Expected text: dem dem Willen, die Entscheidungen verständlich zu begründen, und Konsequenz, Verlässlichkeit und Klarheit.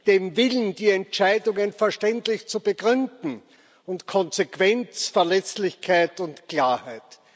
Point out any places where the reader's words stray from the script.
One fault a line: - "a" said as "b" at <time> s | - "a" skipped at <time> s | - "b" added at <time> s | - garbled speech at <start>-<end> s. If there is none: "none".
- "dem" skipped at 0.3 s